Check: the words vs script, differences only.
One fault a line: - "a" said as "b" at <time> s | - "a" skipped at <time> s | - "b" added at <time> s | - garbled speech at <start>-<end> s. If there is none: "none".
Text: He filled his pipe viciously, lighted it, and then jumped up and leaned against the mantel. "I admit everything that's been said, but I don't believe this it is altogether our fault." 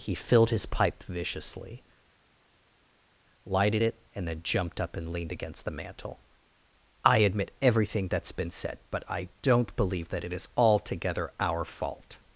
- "this" said as "that" at 10.1 s